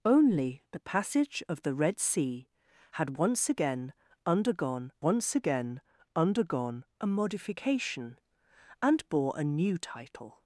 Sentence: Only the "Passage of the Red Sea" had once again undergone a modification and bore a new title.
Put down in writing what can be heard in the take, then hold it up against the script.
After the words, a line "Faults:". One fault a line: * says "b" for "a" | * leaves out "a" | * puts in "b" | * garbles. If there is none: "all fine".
Only the "Passage of the Red Sea" had once again undergone once again undergone a modification and bore a new title.
Faults:
* puts in "once again undergone"